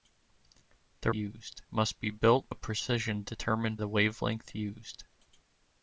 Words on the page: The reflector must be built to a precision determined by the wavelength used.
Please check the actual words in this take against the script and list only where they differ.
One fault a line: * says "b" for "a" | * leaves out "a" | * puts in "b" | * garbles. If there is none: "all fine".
* says "used" for "reflector"
* leaves out "to"
* leaves out "by"